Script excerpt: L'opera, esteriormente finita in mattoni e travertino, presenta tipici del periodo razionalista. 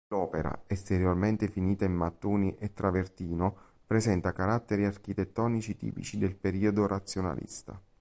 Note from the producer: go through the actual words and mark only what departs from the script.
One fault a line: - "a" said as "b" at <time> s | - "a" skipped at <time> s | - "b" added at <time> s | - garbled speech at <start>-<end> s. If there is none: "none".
- "caratteri architettonici" added at 4.3 s